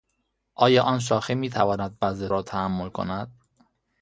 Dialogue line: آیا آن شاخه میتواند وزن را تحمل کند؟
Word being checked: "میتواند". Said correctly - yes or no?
yes